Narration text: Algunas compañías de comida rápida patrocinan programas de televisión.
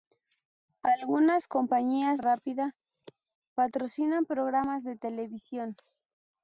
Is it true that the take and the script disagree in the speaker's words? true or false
true